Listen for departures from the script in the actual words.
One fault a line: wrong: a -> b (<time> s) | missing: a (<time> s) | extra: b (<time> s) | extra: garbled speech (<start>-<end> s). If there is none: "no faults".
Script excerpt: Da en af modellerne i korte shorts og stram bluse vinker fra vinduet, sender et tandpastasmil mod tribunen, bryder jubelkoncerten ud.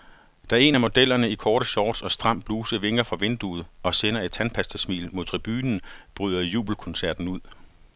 extra: og (3.8 s)